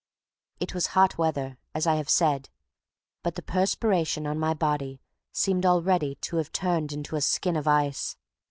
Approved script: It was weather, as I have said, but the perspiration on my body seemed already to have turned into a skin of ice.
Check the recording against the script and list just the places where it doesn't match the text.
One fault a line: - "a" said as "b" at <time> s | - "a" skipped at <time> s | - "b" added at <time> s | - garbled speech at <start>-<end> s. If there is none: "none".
- "hot" added at 1.0 s